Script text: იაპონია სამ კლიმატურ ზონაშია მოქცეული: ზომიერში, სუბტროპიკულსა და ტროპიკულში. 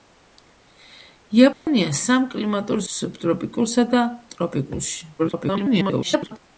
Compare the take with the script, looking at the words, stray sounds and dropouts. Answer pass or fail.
fail